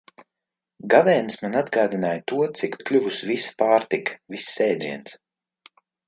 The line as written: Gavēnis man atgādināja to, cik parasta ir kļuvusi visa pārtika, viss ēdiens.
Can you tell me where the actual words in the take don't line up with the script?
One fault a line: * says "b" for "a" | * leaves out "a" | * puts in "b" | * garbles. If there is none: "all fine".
* leaves out "parasta"